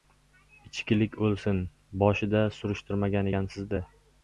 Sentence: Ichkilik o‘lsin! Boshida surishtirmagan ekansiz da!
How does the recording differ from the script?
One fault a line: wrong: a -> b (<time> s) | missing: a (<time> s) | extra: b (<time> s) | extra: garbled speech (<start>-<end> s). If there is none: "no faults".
no faults